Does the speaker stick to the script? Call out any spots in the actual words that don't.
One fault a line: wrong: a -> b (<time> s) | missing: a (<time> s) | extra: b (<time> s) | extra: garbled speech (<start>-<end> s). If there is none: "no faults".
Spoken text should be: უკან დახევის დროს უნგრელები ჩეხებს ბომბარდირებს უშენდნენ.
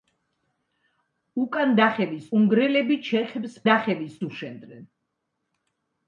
missing: დროს (2.3 s)
wrong: ბომბარდირებს -> დახევის (3.7 s)